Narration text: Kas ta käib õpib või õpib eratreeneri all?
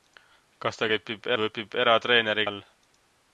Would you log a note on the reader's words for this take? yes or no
no